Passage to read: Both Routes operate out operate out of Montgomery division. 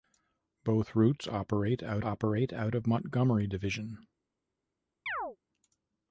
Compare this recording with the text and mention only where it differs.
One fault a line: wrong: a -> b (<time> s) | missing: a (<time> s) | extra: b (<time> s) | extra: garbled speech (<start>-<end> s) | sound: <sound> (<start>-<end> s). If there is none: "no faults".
sound: chirp (5.1-5.4 s)